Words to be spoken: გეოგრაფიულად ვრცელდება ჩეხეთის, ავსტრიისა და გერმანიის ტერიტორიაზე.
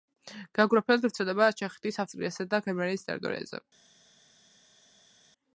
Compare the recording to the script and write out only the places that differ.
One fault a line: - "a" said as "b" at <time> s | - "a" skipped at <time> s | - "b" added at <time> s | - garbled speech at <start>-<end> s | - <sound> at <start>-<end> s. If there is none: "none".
none